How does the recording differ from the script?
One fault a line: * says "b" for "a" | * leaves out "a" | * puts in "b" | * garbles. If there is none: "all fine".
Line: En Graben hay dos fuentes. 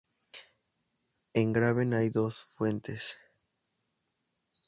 all fine